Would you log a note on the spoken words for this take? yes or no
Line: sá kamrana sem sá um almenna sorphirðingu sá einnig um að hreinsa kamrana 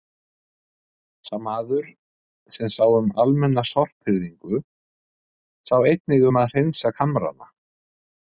yes